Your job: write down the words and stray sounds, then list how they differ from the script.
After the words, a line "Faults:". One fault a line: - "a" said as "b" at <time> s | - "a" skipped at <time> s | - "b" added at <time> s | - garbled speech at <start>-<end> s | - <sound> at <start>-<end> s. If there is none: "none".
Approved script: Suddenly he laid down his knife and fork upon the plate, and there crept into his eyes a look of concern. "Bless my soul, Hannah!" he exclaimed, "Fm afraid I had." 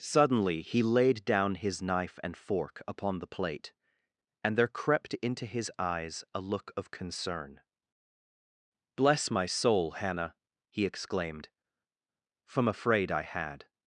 Suddenly he laid down his knife and fork upon the plate, and there crept into his eyes a look of concern. "Bless my soul, Hannah!" he exclaimed, "From afraid I had."
Faults:
- "Fm" said as "From" at 12.4 s